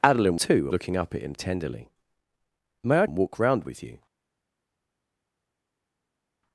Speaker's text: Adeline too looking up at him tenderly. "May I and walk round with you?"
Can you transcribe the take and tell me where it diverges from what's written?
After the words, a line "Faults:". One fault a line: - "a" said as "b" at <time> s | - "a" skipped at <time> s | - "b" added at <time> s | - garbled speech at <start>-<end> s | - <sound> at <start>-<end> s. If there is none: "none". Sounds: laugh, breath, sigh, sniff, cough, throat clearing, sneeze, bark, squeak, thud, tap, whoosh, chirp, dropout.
Adeline too looking up at him tenderly. "May I and walk round with you?"
Faults:
none